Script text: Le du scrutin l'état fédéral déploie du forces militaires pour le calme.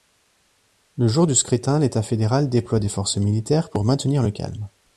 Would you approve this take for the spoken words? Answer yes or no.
no